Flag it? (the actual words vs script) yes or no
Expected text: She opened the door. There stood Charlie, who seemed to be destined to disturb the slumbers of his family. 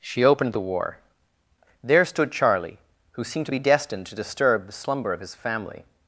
yes